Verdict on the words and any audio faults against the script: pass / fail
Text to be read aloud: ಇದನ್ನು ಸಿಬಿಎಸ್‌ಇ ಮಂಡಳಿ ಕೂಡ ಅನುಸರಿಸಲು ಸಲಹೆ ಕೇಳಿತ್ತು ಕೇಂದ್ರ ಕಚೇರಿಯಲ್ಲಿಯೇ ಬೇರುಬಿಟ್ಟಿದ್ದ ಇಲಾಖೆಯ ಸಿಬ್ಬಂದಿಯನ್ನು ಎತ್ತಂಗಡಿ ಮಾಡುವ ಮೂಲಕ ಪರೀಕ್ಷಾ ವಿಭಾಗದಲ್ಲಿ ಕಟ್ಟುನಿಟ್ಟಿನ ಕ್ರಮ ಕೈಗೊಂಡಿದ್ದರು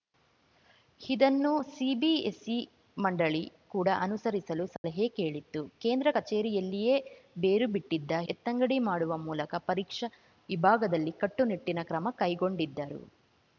fail